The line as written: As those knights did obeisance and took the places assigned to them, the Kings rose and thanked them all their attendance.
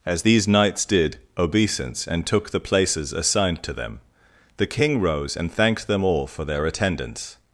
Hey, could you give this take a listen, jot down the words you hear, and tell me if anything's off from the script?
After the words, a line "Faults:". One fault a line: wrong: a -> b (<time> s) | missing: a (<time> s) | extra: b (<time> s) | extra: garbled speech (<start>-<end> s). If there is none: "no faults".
As these knights did obeisance and took the places assigned to them, the King rose and thanked them all for their attendance.
Faults:
wrong: those -> these (0.2 s)
wrong: Kings -> King (4.7 s)
extra: for (6.3 s)